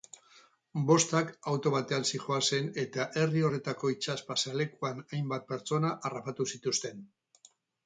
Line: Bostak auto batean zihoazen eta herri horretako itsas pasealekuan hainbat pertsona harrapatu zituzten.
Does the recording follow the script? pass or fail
pass